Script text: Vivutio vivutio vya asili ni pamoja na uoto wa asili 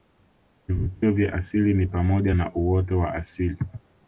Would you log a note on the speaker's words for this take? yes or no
yes